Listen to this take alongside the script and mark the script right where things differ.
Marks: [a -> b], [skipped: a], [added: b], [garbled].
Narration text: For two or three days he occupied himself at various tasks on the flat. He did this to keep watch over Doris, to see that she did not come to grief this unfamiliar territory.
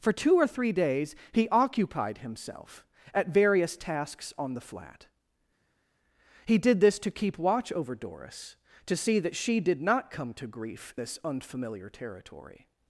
For two or three days he occupied himself at various tasks on the flat. He did this to keep watch over Doris, to see that she did not come to grief this unfamiliar territory.